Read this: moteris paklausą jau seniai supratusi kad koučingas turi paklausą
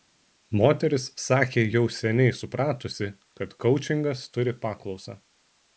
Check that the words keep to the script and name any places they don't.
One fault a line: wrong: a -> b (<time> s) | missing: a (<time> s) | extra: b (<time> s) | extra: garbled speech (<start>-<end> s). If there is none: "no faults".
wrong: paklausą -> sakė (1.2 s)